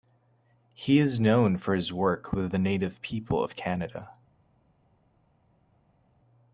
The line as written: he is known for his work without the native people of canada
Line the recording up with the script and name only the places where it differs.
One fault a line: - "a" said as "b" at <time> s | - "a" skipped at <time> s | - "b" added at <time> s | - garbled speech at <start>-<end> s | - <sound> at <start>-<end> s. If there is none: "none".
- "without" said as "with" at 2.3 s